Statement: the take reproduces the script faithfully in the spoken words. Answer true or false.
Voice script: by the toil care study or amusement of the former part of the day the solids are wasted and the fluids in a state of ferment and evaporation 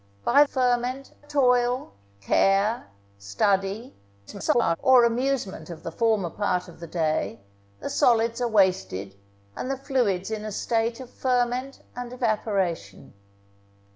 false